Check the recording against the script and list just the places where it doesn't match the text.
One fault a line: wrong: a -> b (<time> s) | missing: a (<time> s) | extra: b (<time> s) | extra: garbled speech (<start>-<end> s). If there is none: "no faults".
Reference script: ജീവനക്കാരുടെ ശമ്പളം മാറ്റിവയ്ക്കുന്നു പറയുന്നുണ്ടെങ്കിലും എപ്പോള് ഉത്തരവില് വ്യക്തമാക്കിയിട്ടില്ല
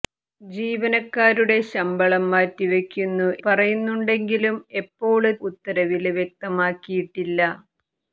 no faults